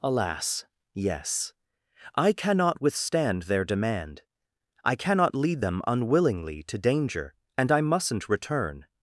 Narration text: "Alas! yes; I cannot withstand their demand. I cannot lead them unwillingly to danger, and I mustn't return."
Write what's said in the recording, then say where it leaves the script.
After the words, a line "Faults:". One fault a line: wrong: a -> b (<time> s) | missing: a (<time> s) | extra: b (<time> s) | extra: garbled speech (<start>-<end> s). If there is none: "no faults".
"Alas! yes; I cannot withstand their demand. I cannot lead them unwillingly to danger, and I mustn't return."
Faults:
no faults